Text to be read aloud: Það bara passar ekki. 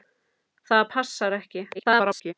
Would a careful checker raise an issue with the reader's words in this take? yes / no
yes